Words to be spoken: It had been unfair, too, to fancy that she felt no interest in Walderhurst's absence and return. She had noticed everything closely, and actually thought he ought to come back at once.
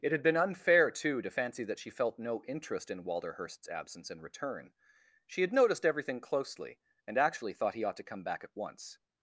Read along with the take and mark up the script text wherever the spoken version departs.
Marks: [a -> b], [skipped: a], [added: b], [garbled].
It had been unfair, too, to fancy that she felt no interest in Walderhurst's absence and return. She had noticed everything closely, and actually thought he ought to come back at once.